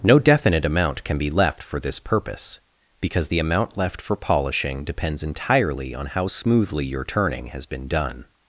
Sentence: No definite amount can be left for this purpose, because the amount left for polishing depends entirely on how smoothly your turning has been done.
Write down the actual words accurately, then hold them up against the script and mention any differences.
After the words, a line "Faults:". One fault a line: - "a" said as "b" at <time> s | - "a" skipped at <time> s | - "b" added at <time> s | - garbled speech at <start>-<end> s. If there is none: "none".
No definite amount can be left for this purpose, because the amount left for polishing depends entirely on how smoothly your turning has been done.
Faults:
none